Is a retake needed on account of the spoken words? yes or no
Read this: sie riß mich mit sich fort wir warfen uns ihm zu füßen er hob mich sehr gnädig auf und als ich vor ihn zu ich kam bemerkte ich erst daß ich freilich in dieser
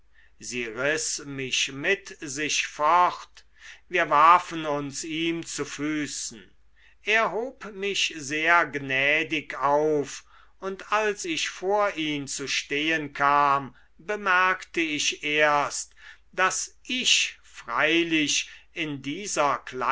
yes